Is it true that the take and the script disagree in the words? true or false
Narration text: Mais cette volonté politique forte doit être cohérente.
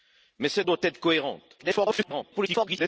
true